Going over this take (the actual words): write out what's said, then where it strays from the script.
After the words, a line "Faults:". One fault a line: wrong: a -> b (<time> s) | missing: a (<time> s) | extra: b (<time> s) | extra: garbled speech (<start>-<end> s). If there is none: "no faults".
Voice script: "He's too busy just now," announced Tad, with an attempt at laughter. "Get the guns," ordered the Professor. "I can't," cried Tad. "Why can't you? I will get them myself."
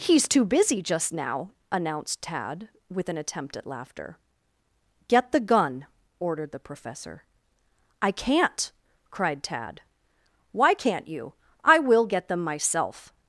"He's too busy just now," announced Tad, with an attempt at laughter. "Get the gun," ordered the Professor. "I can't," cried Tad. "Why can't you? I will get them myself."
Faults:
wrong: guns -> gun (5.4 s)